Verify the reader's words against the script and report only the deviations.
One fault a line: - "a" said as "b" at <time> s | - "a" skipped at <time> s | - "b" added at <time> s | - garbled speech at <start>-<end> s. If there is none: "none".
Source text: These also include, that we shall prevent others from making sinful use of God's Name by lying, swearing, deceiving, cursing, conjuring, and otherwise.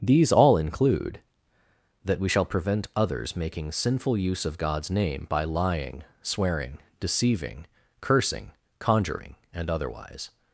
- "also" said as "all" at 0.3 s
- "from" skipped at 3.4 s